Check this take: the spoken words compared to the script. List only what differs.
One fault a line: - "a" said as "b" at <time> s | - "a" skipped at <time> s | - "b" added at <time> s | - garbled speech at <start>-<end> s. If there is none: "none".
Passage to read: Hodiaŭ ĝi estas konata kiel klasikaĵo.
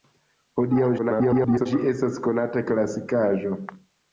- garbled speech at 1.0-1.7 s
- "kiel" skipped at 2.7 s